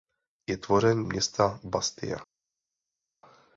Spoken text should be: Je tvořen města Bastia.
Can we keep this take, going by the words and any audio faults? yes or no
yes